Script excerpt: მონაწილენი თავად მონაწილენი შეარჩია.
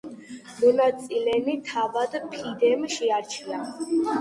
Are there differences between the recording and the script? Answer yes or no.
yes